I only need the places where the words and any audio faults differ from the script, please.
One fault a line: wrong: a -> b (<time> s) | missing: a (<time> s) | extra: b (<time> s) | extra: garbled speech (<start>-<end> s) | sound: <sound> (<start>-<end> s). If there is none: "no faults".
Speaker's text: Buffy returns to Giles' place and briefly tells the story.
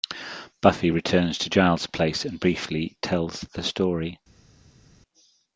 no faults